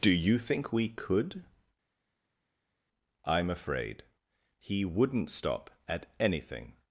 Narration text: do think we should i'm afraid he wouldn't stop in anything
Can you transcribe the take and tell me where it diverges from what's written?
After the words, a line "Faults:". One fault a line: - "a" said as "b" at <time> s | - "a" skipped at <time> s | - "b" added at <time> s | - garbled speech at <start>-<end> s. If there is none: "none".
do you think we could i'm afraid he wouldn't stop at anything
Faults:
- "you" added at 0.1 s
- "should" said as "could" at 0.9 s
- "in" said as "at" at 5.9 s